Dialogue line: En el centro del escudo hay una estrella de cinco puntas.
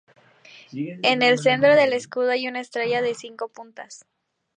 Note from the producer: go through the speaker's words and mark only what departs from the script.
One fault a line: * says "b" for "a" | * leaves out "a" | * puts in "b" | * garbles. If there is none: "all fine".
all fine